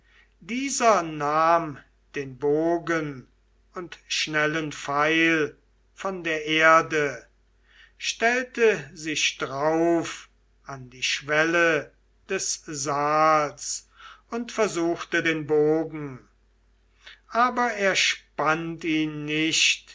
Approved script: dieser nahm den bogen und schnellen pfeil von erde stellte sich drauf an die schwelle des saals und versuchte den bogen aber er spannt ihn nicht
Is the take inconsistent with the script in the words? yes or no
yes